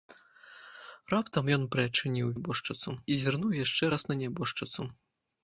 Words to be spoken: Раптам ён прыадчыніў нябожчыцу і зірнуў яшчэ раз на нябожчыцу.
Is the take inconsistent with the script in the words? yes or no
no